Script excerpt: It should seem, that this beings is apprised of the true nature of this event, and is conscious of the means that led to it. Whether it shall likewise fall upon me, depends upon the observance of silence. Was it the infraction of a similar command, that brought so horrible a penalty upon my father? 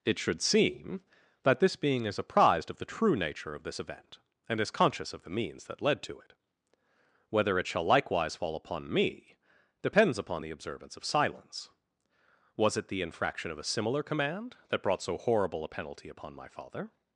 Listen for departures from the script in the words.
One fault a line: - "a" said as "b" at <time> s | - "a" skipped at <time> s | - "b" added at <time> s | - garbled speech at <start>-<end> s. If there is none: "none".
- "beings" said as "being" at 1.8 s